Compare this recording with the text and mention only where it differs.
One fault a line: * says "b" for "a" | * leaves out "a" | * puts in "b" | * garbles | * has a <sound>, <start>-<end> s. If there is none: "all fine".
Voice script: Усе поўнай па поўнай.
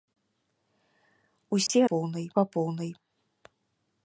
* has a dropout, 1.7-1.7 s